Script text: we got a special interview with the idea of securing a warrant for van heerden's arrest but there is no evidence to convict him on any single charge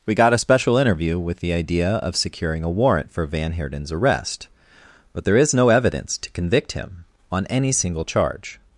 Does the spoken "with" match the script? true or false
true